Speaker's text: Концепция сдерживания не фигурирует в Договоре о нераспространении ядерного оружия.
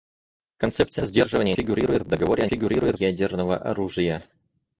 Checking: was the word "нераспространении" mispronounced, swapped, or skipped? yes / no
yes